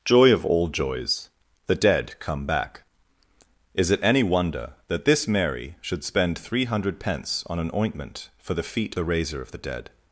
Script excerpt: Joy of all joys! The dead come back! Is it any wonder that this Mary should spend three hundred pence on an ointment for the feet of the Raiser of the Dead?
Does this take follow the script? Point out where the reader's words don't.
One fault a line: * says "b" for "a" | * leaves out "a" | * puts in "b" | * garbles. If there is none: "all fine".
* leaves out "of"